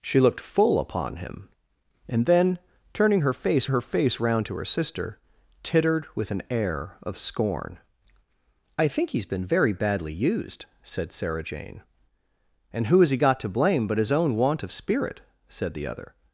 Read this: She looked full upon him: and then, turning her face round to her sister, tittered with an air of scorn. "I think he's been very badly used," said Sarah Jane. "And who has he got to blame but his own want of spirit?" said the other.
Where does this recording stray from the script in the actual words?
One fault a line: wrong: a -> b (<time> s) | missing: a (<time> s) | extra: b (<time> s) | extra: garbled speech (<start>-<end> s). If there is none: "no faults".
extra: her face (3.7 s)